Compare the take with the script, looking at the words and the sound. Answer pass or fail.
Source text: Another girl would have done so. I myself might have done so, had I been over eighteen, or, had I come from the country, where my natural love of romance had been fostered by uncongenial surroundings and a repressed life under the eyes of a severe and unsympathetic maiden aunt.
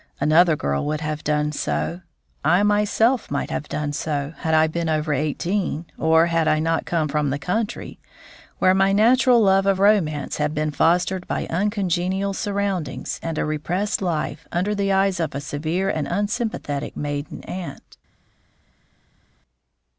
fail